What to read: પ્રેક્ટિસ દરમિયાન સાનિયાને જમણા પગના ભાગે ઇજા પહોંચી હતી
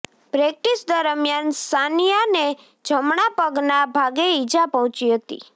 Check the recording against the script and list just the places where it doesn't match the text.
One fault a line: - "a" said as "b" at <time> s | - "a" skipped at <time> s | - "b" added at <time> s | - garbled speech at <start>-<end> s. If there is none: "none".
none